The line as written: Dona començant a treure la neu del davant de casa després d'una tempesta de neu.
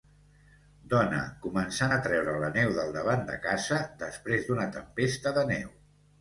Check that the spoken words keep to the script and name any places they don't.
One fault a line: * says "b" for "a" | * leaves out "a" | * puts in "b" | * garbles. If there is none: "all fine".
all fine